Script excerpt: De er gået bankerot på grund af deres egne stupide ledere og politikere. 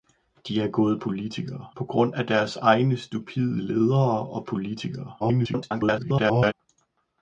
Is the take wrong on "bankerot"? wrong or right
wrong